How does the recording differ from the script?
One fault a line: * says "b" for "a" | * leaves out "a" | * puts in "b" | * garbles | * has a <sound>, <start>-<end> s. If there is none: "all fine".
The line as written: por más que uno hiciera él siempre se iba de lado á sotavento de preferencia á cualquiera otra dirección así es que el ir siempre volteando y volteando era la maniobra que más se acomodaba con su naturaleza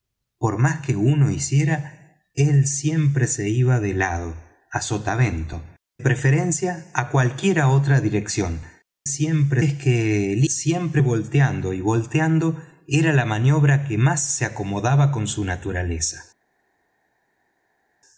* leaves out "de"
* says "siempre" for "así"
* leaves out "ir"